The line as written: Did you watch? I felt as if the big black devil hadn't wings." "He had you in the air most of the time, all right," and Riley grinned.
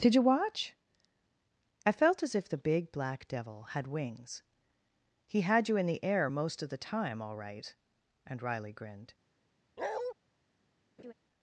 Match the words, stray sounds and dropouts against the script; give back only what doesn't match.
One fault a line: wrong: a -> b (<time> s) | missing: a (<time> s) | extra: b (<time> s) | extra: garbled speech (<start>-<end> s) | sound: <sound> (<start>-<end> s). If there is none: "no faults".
wrong: hadn't -> had (3.7 s)
sound: bark (9.8-10.1 s)
sound: laugh (11.0-11.1 s)